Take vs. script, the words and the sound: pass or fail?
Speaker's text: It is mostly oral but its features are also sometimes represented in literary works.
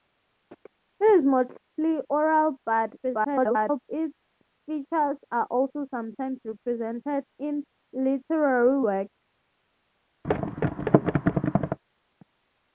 fail